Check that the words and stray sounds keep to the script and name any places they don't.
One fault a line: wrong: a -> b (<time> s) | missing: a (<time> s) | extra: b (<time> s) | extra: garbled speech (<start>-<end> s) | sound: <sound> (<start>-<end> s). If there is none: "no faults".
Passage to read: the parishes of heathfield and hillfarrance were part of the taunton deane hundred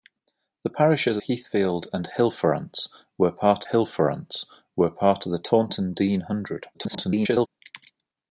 missing: of (1.2 s)
extra: hillfarrance were part (3.7 s)
extra: garbled speech (6.7-7.5 s)